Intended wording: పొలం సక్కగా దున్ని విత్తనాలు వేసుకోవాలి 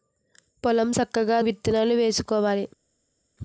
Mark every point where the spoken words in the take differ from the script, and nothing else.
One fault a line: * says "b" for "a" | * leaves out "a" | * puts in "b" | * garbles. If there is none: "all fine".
* leaves out "దున్ని"